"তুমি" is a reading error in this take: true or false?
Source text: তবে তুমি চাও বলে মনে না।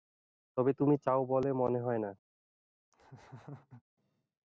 false